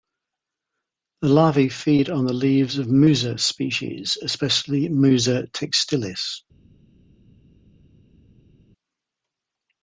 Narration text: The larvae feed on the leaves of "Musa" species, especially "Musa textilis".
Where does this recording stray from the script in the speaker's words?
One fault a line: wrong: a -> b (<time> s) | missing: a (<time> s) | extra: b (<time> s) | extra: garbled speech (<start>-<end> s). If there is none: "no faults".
no faults